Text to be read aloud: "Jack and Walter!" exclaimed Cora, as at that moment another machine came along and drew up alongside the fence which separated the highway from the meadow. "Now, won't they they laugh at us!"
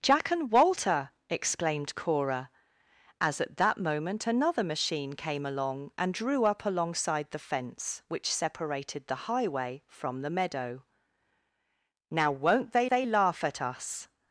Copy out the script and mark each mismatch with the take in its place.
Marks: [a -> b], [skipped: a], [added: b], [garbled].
"Jack and Walter!" exclaimed Cora, as at that moment another machine came along and drew up alongside the fence which separated the highway from the meadow. "Now, won't they they laugh at us!"